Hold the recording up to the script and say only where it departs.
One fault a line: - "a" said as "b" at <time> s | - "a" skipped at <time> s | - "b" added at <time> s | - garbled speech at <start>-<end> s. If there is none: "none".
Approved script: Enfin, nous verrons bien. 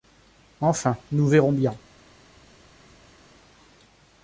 none